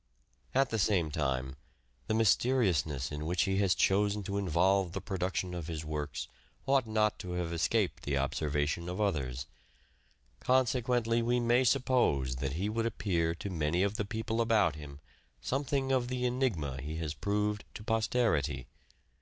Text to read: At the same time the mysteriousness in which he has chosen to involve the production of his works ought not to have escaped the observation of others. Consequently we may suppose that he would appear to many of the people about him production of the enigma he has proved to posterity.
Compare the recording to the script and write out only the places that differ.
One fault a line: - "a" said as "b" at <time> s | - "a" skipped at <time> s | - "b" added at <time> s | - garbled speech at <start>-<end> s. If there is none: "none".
- "production" said as "something" at 15.4 s